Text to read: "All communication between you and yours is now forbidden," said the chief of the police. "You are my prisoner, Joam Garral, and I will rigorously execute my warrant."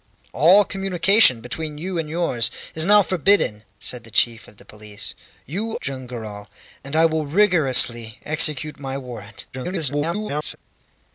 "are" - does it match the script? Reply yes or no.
no